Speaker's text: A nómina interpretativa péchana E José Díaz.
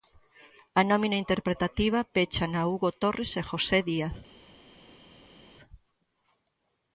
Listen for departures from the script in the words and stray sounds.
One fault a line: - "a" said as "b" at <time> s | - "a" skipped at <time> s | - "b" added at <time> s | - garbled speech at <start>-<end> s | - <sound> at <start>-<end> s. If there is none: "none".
- "Hugo Torres" added at 2.7 s